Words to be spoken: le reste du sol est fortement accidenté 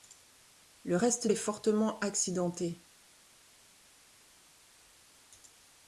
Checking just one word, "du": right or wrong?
wrong